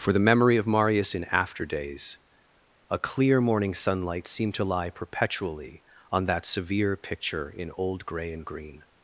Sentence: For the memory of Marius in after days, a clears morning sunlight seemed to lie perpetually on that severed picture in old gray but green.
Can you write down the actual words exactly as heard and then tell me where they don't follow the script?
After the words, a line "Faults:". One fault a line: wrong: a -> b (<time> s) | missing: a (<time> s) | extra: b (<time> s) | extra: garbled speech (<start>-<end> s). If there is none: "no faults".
For the memory of Marius in after days, a clear morning sunlight seemed to lie perpetually on that severe picture in old gray and green.
Faults:
wrong: clears -> clear (3.0 s)
wrong: severed -> severe (6.5 s)
wrong: but -> and (8.3 s)